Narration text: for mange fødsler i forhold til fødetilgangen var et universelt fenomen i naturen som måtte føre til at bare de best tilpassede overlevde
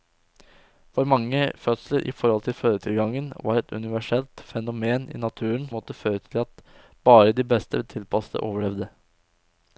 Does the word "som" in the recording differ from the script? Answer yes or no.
yes